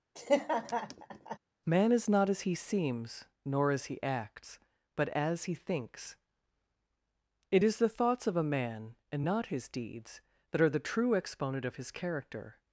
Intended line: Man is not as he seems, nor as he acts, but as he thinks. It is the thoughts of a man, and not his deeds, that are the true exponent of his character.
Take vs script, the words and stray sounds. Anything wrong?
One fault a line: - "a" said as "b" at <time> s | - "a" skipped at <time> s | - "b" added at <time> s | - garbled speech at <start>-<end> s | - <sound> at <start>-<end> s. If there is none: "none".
- laugh at 0.1-1.4 s